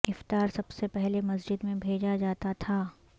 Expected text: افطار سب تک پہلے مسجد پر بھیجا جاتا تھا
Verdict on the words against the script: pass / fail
fail